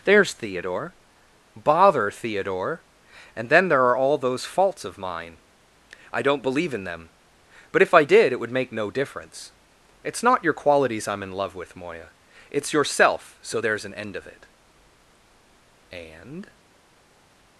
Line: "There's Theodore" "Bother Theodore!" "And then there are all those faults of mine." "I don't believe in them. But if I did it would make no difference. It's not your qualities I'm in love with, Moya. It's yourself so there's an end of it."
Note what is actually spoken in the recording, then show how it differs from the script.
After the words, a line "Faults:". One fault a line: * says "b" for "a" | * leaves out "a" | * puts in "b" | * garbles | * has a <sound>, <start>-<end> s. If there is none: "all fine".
"There's Theodore" "Bother Theodore!" "And then there are all those faults of mine." "I don't believe in them. But if I did it would make no difference. It's not your qualities I'm in love with, Moya. It's yourself so there's an end of it." And
Faults:
* puts in "And"